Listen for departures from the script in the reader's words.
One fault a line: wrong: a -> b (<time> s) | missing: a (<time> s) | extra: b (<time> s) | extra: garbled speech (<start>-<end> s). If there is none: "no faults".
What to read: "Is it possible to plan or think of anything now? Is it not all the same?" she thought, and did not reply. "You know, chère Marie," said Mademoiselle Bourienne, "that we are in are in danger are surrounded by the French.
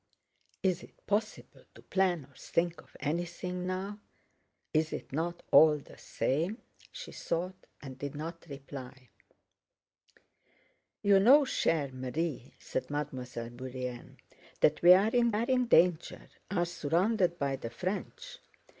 no faults